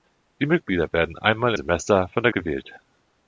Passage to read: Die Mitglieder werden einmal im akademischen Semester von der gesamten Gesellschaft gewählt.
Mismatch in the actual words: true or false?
true